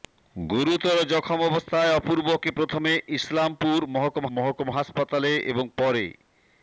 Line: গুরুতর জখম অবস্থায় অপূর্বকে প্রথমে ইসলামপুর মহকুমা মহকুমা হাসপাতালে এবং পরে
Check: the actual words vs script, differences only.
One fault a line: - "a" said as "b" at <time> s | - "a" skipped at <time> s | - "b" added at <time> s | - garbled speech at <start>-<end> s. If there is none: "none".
none